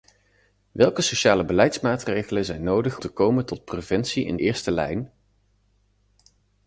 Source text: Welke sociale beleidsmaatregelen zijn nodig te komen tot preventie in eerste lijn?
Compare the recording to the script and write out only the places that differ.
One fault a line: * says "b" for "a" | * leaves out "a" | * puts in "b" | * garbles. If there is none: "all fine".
all fine